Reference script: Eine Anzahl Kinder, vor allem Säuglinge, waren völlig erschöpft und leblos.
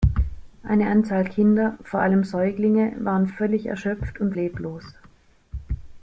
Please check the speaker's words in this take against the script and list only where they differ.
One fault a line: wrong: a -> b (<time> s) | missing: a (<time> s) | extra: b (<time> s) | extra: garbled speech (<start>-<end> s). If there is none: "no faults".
no faults